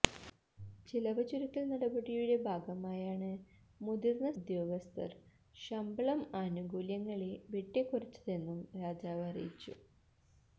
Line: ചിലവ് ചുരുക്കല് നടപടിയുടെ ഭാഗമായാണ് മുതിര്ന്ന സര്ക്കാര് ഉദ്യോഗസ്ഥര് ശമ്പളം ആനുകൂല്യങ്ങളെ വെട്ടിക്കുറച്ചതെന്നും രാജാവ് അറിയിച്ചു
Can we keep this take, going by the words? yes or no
no